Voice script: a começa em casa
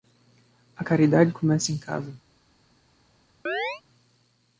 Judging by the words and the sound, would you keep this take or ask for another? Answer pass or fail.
fail